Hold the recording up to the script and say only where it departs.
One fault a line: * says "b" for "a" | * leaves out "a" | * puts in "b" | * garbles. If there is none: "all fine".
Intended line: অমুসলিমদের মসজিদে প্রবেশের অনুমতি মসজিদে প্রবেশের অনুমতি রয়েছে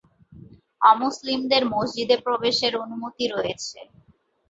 * leaves out "মসজিদে প্রবেশের অনুমতি"